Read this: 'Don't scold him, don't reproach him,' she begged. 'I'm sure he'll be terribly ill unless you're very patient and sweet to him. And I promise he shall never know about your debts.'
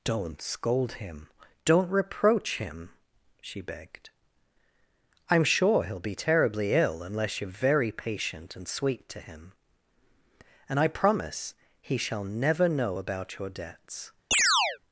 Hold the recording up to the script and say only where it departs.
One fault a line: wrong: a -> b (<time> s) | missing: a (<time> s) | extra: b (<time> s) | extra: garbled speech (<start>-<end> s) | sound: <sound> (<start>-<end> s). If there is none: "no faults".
sound: chirp (14.3-14.8 s)